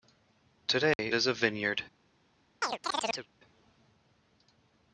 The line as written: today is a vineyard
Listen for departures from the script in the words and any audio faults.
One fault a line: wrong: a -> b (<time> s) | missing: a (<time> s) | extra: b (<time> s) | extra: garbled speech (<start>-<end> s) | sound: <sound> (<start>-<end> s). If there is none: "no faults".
sound: dropout (0.9-1.0 s)
sound: chirp (2.6-3.3 s)